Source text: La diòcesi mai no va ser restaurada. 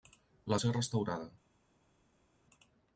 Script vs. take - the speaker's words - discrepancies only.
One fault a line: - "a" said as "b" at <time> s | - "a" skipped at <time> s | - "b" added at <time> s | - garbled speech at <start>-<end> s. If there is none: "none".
- "diòcesi mai no" skipped at 0.6 s